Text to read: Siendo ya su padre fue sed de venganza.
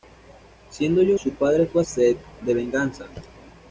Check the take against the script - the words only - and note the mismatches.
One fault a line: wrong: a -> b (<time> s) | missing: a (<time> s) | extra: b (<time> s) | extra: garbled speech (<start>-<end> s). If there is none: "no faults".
no faults